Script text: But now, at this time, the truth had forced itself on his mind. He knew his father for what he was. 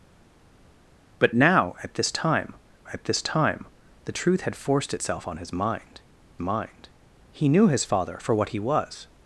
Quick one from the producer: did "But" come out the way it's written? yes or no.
yes